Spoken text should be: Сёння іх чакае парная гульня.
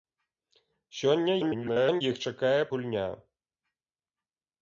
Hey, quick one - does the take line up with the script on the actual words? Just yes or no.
no